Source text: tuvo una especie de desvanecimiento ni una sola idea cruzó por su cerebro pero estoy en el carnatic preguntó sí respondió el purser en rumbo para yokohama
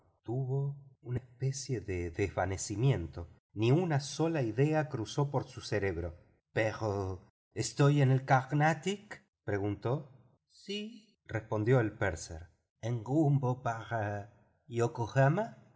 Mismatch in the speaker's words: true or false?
false